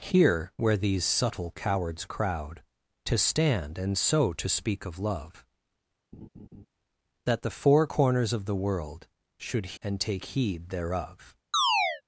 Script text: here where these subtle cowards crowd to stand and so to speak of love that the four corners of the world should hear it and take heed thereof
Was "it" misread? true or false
true